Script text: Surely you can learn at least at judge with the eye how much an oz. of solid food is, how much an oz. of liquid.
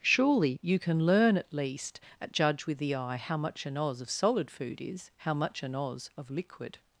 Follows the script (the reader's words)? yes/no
yes